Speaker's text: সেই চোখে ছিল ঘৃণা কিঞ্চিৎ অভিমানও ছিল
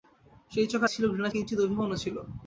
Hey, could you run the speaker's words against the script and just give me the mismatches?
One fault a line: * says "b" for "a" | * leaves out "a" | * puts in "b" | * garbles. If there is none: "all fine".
all fine